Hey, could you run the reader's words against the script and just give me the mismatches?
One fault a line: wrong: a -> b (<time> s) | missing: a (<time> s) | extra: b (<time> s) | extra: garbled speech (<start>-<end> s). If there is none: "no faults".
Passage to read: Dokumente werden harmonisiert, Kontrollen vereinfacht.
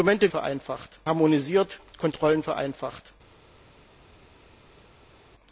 wrong: werden -> vereinfacht (0.3 s)